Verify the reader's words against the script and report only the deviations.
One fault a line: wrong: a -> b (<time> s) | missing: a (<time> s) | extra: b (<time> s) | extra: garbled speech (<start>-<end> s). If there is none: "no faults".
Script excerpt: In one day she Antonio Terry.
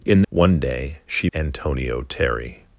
no faults